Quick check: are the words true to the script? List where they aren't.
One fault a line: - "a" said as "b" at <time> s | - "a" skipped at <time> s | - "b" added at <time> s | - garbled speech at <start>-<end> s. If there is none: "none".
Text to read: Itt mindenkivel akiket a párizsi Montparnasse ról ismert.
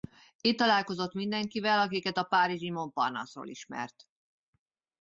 - "találkozott" added at 0.6 s